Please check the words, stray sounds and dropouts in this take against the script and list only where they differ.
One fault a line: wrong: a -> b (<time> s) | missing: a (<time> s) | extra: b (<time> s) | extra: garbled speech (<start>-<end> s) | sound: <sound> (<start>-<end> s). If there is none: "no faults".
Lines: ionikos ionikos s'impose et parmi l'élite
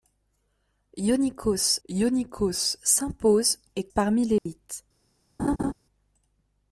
sound: dropout (4.4-4.5 s)
sound: laugh (5.4-5.7 s)